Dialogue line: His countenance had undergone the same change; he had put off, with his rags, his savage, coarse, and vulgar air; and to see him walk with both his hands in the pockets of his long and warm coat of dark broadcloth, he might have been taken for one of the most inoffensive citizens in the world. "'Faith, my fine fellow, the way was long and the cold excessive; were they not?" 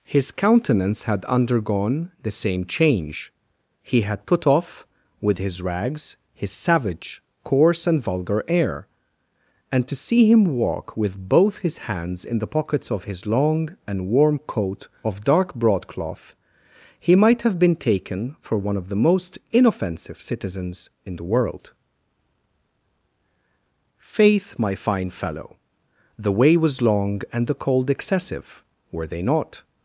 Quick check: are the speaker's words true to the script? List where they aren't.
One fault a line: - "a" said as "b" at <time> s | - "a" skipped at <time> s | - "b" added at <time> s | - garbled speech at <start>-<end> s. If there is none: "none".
none